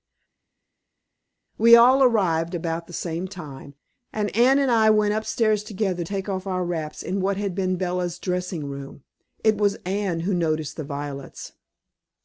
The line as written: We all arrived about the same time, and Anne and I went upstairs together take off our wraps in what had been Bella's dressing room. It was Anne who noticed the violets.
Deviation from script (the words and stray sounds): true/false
false